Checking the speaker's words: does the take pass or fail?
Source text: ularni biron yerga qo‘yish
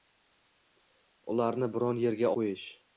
pass